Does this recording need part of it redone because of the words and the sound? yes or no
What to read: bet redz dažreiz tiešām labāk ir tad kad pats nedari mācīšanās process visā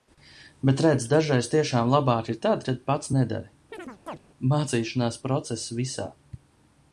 yes